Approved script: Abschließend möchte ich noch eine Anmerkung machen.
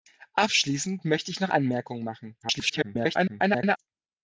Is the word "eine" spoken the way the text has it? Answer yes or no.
no